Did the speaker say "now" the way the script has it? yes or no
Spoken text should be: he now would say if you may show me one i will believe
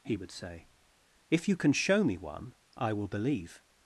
no